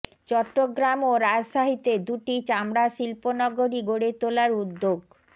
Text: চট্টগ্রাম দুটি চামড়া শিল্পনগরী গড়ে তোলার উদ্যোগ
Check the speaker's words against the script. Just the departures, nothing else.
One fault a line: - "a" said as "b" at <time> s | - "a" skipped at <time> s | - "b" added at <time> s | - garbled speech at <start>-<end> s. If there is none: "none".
- "ও রাজশাহীতে" added at 1.0 s